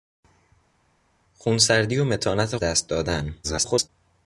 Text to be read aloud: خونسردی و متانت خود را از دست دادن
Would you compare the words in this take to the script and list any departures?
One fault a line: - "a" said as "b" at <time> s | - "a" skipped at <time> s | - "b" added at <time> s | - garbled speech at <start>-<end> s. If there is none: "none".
- "خود را از" skipped at 2.6 s
- garbled speech at 3.4-3.9 s